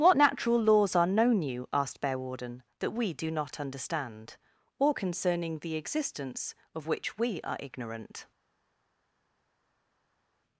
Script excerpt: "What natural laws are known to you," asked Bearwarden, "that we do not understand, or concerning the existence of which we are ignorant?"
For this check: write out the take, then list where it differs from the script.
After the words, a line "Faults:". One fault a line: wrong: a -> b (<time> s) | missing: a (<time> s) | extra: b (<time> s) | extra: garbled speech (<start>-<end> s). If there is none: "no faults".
"What natural laws are known you," asked Bearwarden, "that we do not understand, or concerning the existence of which we are ignorant?"
Faults:
missing: to (1.4 s)